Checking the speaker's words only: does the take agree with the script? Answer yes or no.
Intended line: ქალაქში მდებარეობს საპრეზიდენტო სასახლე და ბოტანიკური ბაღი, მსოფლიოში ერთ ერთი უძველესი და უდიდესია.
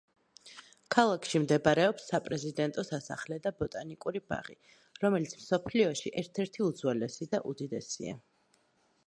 no